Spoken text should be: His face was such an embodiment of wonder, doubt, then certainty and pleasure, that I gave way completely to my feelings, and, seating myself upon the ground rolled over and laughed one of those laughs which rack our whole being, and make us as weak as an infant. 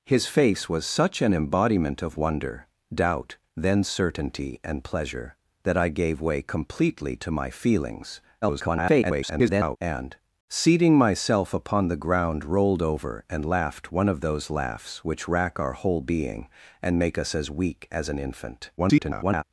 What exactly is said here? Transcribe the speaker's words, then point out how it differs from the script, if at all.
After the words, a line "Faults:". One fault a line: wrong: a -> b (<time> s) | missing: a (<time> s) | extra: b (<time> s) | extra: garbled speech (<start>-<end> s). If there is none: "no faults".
His face was such an embodiment of wonder, doubt, then certainty and pleasure, that I gave way completely to my feelings, [garbled] and, seating myself upon the ground rolled over and laughed one of those laughs which rack our whole being, and make us as weak as an infant. [garbled]
Faults:
extra: garbled speech (8.4-9.8 s)
extra: garbled speech (18.8-19.4 s)